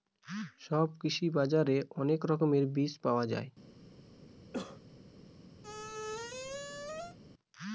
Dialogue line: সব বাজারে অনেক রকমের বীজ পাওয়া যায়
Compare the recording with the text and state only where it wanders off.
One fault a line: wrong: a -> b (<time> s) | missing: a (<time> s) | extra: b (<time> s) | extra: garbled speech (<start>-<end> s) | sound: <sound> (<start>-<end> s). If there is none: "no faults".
extra: কৃষি (1.0 s)
sound: cough (4.5-4.8 s)
sound: squeak (5.6-7.2 s)